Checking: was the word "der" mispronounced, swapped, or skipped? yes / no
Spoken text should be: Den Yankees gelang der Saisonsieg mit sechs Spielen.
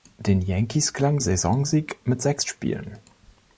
yes